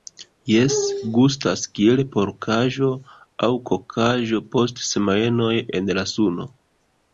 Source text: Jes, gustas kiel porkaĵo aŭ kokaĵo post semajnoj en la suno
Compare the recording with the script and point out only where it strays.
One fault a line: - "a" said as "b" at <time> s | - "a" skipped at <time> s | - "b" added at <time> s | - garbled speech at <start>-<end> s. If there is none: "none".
none